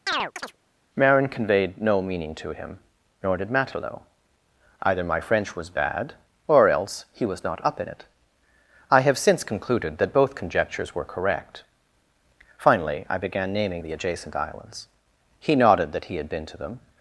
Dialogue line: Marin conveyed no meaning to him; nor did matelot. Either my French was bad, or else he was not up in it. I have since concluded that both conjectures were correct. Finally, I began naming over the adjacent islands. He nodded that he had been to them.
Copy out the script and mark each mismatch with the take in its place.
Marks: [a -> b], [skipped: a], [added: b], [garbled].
Marin conveyed no meaning to him; nor did matelot. Either my French was bad, or else he was not up in it. I have since concluded that both conjectures were correct. Finally, I began naming [skipped: over] the adjacent islands. He nodded that he had been to them.